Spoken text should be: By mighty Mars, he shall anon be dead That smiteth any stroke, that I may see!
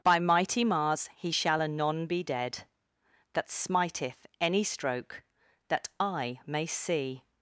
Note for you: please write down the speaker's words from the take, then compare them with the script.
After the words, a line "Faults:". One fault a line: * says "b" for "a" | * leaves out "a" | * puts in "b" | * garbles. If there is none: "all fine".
By mighty Mars, he shall anon be dead That smiteth any stroke, that I may see!
Faults:
all fine